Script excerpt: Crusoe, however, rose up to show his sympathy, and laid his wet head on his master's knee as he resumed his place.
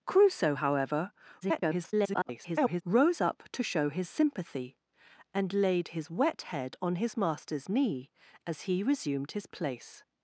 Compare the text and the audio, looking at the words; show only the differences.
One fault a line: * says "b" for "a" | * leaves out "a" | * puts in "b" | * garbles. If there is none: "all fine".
* garbles